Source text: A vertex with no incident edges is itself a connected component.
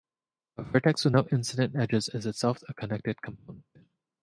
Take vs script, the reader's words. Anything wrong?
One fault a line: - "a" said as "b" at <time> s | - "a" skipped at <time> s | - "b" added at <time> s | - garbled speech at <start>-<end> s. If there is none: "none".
none